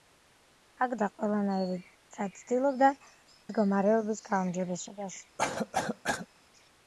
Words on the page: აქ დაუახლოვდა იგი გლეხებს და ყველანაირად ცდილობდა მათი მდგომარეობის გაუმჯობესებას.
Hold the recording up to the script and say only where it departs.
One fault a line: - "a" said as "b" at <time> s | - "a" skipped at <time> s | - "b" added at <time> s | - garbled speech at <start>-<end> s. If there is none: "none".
- "დაუახლოვდა იგი გლეხებს" skipped at 0.9 s
- "მათი" skipped at 2.9 s